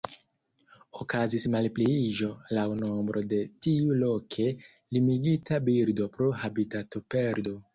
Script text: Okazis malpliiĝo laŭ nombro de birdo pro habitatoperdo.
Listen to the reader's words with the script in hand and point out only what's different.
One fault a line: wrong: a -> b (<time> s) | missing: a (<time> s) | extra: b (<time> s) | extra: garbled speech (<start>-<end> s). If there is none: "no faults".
extra: tiu loke limigita (3.7 s)